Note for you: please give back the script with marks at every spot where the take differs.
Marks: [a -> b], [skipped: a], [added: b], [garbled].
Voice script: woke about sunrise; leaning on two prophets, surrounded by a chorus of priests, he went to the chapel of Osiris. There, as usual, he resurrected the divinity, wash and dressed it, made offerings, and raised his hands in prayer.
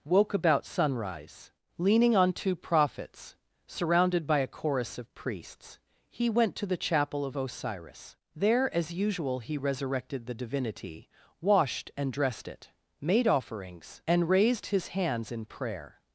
woke about sunrise; leaning on two prophets, surrounded by a chorus of priests, he went to the chapel of Osiris. There, as usual, he resurrected the divinity, [wash -> washed] and dressed it, made offerings, and raised his hands in prayer.